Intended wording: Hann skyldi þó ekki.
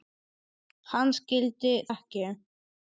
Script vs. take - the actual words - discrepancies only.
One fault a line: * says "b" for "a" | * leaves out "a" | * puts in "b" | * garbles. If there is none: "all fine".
* leaves out "þó"